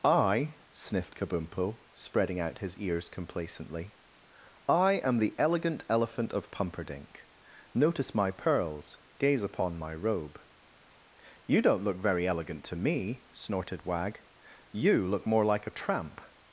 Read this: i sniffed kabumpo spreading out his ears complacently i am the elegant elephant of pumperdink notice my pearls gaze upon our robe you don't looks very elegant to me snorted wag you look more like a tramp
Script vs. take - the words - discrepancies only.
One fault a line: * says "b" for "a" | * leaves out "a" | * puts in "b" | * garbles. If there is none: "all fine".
* says "my" for "our"
* says "look" for "looks"